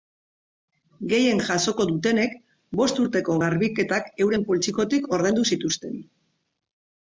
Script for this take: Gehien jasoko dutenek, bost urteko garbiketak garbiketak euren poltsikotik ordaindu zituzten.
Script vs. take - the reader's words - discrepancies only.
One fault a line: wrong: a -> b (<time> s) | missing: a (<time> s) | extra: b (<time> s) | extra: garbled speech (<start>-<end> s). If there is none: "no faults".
missing: garbiketak (4.1 s)